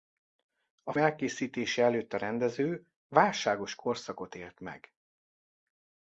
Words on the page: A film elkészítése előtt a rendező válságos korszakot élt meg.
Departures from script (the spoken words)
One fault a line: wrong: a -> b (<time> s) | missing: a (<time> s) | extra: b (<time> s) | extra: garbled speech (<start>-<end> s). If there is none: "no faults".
missing: film (0.9 s)